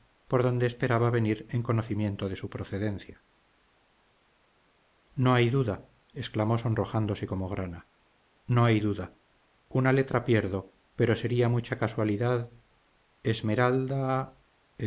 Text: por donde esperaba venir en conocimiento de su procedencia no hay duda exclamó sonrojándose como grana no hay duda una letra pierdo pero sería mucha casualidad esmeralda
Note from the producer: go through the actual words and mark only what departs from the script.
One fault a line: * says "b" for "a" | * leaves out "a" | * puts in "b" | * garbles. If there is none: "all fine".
all fine